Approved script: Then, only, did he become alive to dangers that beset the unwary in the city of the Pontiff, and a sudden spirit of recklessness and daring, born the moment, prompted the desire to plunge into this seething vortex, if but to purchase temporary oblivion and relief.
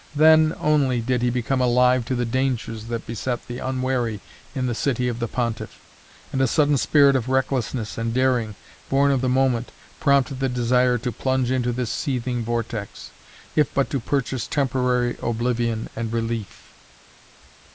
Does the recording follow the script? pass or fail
fail